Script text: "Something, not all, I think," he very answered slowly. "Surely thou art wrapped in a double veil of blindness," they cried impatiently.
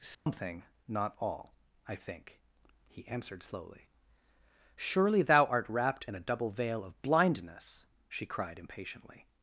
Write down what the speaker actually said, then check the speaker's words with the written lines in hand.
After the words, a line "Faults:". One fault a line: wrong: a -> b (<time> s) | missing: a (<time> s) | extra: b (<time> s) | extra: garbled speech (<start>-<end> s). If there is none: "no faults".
"Something, not all, I think," he answered slowly. "Surely thou art wrapped in a double veil of blindness," she cried impatiently.
Faults:
missing: very (3.1 s)
wrong: they -> she (8.1 s)